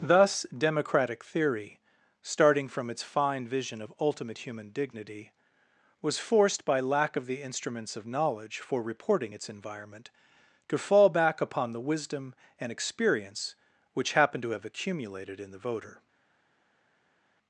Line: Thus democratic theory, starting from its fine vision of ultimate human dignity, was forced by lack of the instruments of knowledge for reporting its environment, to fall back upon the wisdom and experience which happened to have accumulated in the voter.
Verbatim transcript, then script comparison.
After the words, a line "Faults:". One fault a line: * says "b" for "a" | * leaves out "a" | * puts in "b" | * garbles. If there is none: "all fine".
Thus democratic theory, starting from its fine vision of ultimate human dignity, was forced by lack of the instruments of knowledge for reporting its environment, to fall back upon the wisdom and experience which happened to have accumulated in the voter.
Faults:
all fine